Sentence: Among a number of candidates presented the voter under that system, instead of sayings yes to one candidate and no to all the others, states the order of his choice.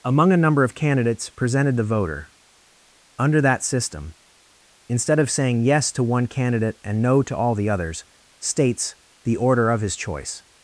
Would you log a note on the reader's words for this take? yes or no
yes